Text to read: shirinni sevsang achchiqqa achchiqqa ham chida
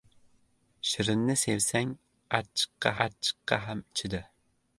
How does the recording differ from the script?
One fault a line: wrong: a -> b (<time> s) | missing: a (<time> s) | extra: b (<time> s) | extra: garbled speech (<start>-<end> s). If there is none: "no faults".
no faults